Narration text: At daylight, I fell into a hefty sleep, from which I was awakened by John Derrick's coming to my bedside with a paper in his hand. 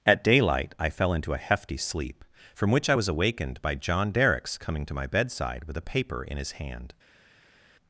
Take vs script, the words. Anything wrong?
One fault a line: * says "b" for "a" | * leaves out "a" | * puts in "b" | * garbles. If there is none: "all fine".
all fine